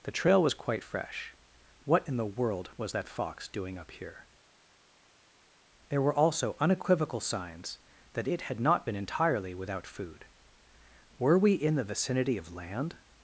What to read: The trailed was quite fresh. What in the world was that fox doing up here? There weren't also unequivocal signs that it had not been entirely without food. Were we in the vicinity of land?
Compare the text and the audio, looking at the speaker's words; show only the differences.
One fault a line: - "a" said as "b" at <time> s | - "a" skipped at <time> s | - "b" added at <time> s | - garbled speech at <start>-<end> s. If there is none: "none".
- "trailed" said as "trail" at 0.1 s
- "weren't" said as "were" at 6.0 s